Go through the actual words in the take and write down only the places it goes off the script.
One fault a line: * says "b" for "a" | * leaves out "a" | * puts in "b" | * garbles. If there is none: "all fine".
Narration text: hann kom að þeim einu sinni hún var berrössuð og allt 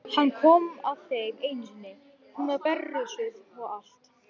all fine